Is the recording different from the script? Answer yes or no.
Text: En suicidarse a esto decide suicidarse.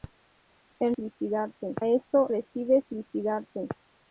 no